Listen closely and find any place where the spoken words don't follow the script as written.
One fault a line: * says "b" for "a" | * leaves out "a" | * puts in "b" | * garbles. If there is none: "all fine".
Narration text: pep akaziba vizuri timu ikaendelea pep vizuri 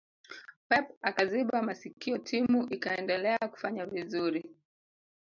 * says "masikio" for "vizuri"
* says "kufanya" for "pep"